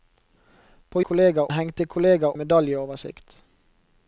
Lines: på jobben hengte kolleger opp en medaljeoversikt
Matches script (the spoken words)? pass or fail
fail